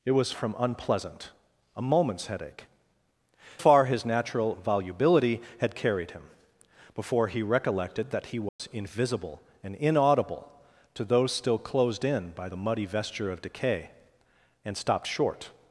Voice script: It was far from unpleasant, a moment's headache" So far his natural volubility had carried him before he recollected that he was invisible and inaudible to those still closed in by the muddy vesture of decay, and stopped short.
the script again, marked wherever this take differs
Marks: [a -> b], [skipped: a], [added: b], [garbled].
It was [skipped: far] from unpleasant, a moment's headache" [skipped: So] far his natural volubility had carried him before he recollected that he was invisible and inaudible to those still closed in by the muddy vesture of decay, and stopped short.